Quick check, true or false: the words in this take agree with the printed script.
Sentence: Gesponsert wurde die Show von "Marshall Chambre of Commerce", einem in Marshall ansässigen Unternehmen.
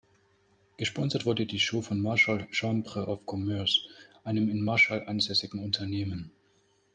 true